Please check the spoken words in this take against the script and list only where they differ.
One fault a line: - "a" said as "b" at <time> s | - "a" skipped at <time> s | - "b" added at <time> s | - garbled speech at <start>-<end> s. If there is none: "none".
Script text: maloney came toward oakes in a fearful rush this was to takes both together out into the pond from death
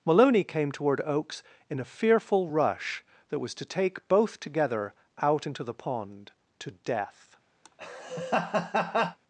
- "this" said as "that" at 3.3 s
- "takes" said as "take" at 3.6 s
- "from" said as "to" at 6.6 s